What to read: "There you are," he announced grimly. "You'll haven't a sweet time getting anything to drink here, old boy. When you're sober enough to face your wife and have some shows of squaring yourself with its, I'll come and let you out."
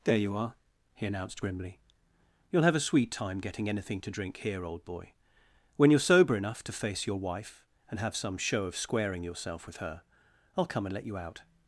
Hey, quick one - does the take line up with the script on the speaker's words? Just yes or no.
no